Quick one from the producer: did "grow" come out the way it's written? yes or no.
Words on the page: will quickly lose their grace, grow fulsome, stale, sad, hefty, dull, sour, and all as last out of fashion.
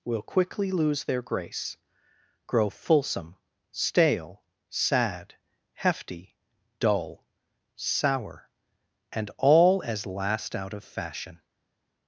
yes